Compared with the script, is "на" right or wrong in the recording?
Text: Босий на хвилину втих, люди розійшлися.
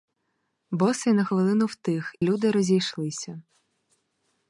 right